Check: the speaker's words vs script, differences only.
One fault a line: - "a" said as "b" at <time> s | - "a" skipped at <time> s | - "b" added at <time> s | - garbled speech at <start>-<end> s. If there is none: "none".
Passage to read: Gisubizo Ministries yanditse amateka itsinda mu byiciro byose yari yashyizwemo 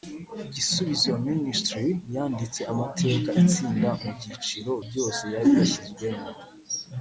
none